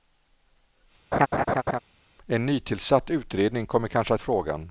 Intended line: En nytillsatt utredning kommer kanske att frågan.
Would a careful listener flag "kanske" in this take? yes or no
no